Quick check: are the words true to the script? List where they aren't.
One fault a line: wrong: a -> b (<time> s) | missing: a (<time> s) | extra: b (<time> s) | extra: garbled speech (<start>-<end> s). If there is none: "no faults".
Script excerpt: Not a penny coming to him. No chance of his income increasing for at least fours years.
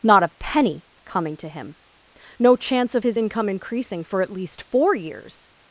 wrong: fours -> four (4.6 s)